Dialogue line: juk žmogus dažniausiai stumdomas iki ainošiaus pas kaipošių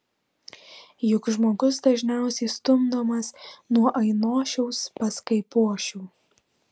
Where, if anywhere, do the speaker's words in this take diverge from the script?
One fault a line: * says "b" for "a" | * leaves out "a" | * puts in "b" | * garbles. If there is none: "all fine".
* says "nuo" for "iki"